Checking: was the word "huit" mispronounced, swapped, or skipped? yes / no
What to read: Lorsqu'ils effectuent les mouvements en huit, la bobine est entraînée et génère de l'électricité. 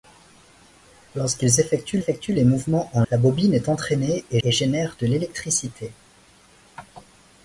yes